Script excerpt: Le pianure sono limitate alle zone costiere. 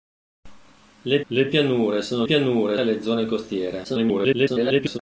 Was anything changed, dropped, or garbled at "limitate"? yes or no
yes